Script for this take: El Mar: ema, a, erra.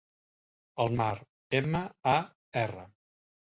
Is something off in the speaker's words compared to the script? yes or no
no